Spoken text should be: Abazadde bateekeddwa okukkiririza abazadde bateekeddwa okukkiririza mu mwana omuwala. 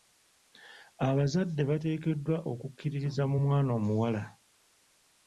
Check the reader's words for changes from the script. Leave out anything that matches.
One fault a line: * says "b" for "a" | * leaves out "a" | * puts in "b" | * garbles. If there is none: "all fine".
* leaves out "abazadde bateekeddwa okukkiririza"